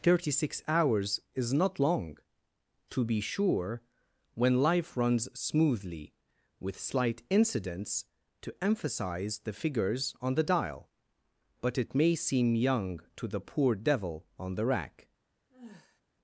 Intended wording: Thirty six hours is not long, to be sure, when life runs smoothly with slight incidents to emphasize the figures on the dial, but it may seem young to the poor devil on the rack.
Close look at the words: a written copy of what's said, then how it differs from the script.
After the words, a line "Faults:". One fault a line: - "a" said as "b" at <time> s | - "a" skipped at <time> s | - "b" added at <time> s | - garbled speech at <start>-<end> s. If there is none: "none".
Thirty six hours is not long, to be sure, when life runs smoothly with slight incidents to emphasize the figures on the dial, but it may seem young to the poor devil on the rack.
Faults:
none